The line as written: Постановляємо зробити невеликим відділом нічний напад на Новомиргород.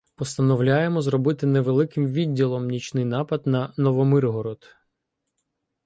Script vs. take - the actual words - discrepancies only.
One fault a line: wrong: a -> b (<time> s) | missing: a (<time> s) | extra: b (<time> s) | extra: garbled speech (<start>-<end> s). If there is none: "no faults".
no faults